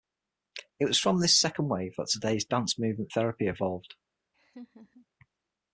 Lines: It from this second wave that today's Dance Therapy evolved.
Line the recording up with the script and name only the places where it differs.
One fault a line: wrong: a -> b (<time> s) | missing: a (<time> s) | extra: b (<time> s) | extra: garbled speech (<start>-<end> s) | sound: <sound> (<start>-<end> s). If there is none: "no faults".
extra: was (0.8 s)
extra: Movement (2.8 s)
sound: laugh (4.3-5.1 s)